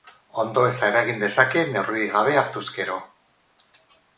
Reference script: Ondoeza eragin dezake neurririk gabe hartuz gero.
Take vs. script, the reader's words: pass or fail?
pass